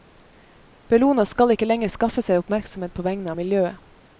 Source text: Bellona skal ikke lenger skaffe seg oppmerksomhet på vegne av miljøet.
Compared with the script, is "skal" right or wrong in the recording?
right